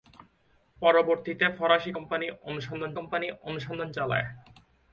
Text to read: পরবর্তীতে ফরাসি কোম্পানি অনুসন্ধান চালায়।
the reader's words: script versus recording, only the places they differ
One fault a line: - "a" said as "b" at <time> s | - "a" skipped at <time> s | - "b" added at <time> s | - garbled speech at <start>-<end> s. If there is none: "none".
- "কোম্পানি অনুসন্ধান" added at 2.9 s